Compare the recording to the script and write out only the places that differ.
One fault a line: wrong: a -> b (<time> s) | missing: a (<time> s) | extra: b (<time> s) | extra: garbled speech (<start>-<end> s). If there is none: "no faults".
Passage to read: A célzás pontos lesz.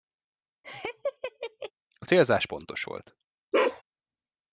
wrong: lesz -> volt (2.8 s)